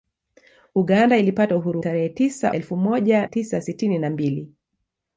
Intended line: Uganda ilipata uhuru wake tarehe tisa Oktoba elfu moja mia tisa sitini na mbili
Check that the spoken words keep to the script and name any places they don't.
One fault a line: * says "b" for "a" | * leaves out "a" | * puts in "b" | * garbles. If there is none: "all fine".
* leaves out "wake"
* leaves out "Oktoba"
* leaves out "mia"